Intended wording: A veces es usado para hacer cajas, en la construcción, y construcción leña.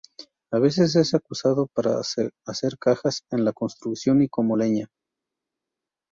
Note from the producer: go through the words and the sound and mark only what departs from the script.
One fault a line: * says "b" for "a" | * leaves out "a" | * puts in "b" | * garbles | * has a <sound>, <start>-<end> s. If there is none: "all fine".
* says "como" for "construcción"